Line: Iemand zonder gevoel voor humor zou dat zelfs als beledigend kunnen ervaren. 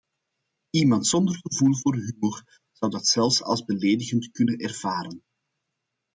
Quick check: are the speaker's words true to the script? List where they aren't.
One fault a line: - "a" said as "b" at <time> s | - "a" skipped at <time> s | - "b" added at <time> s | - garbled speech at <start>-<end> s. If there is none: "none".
none